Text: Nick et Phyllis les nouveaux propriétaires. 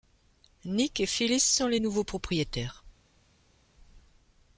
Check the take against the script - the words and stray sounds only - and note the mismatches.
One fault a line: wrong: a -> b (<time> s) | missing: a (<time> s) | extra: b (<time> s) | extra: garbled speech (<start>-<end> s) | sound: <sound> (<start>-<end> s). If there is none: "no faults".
extra: sont (1.4 s)